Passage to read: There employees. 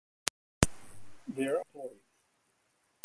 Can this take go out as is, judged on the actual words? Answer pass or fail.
pass